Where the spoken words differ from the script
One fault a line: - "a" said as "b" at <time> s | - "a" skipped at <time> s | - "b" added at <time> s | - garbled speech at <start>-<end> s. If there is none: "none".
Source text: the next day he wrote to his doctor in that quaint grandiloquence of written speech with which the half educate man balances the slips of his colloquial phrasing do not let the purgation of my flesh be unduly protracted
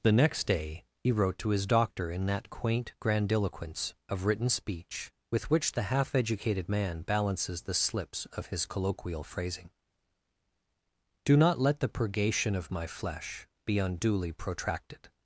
- "educate" said as "educated" at 6.2 s